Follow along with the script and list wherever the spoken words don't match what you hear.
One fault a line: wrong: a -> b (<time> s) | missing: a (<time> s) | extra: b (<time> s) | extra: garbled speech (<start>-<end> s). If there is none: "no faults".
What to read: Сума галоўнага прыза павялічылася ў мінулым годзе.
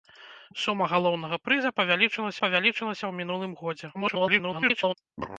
extra: павялічылася (2.5 s)
extra: garbled speech (3.9-4.9 s)